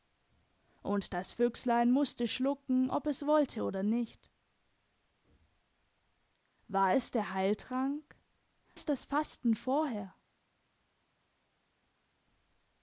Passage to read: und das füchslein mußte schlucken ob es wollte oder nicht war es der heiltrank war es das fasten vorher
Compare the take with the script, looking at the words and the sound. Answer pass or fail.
fail